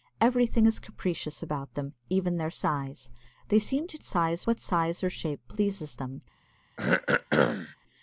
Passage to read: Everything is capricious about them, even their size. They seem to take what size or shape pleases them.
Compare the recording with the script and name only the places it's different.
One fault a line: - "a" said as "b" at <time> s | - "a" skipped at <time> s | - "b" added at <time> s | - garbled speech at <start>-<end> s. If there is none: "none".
- "take" said as "size" at 4.0 s